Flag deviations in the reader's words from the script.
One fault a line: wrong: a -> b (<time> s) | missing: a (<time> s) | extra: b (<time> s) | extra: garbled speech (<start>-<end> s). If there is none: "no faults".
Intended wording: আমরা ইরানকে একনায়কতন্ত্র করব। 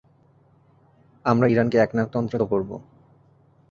no faults